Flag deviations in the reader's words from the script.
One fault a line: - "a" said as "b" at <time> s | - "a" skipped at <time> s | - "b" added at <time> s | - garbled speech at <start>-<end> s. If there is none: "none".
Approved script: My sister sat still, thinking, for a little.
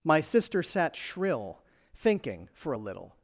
- "still" said as "shrill" at 0.9 s